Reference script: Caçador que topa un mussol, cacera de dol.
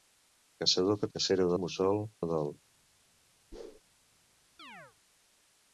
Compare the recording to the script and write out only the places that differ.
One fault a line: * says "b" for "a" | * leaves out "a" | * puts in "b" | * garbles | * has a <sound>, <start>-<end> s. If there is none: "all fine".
* says "cacera" for "topa"
* leaves out "cacera"
* has a whoosh, 3.5-3.8 s
* has a chirp, 4.6-5.0 s